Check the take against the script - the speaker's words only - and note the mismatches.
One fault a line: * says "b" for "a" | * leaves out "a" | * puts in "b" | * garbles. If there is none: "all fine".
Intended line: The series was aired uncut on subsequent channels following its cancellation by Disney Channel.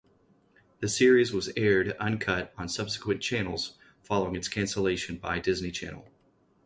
all fine